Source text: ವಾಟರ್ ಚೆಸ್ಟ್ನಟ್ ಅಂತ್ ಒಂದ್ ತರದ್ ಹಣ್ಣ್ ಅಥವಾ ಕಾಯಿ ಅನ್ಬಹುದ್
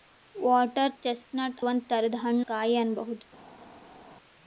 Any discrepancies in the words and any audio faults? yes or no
yes